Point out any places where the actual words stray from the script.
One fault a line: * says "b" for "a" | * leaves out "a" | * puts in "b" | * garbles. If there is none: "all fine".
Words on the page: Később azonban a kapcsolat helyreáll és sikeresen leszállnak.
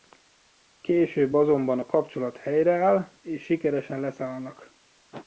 all fine